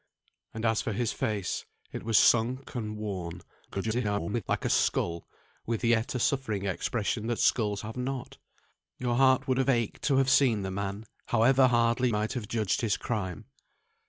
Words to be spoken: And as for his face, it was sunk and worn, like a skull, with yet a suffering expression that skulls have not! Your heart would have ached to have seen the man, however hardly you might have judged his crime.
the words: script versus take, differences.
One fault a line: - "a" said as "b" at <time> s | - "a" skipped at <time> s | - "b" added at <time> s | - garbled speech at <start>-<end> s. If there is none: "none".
- garbled speech at 3.7-4.4 s
- "you" skipped at 12.1 s